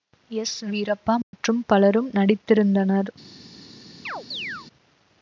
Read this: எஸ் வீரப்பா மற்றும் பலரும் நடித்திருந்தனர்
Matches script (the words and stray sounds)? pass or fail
fail